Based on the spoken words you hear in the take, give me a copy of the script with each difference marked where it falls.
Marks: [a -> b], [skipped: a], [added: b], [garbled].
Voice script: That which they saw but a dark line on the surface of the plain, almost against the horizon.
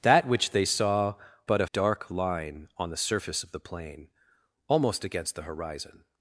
That which they saw but a dark line on the surface of the plain, almost against the horizon.